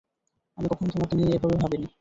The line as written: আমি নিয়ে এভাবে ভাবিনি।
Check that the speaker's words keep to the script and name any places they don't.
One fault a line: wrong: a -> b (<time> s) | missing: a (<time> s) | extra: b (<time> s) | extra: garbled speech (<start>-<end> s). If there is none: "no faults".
extra: কখনো তোমাকে (0.7 s)